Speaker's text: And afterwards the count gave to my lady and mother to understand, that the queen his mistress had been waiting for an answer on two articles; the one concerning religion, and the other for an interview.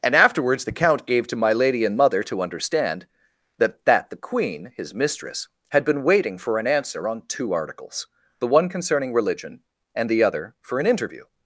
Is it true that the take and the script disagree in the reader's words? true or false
true